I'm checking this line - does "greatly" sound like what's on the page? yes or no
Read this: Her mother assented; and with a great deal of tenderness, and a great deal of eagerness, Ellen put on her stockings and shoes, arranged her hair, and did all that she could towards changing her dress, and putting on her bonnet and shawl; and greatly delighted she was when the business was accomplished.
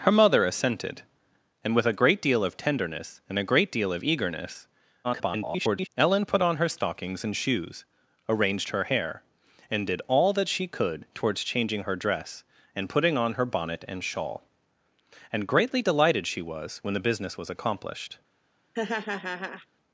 yes